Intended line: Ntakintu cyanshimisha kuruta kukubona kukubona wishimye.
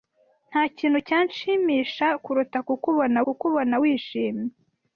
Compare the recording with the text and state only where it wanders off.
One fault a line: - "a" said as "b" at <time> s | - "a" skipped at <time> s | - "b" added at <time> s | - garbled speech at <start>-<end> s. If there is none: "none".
none